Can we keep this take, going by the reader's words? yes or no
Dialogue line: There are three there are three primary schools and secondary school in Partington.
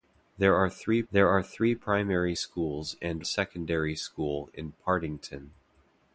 yes